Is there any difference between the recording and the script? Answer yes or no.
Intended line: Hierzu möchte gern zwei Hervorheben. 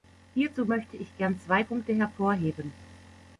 yes